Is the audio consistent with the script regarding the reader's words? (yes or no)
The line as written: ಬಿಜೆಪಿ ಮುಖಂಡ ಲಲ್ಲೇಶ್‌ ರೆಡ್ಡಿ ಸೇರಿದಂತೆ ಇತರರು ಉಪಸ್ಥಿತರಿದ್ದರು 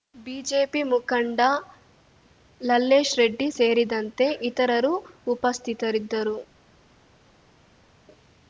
yes